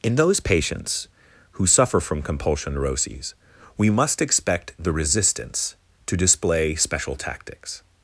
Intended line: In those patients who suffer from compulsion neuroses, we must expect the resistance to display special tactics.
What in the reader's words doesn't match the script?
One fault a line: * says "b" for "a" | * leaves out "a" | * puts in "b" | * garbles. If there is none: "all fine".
all fine